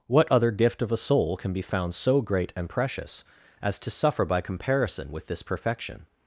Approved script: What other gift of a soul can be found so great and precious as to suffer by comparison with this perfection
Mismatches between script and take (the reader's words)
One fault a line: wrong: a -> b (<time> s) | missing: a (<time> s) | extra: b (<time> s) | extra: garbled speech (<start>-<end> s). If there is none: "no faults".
no faults